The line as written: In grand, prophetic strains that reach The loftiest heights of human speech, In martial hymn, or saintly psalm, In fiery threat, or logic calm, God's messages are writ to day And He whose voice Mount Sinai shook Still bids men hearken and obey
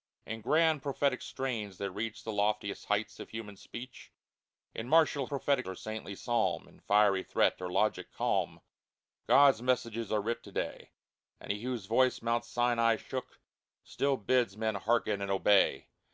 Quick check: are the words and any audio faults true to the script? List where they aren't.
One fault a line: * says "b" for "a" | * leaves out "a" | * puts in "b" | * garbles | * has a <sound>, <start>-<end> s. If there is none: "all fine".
* says "prophetic" for "hymn"